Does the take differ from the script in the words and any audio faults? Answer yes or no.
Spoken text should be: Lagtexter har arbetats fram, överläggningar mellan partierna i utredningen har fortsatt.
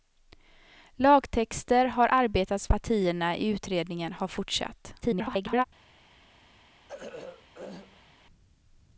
yes